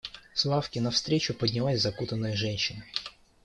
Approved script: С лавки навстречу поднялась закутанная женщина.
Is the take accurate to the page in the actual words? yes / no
yes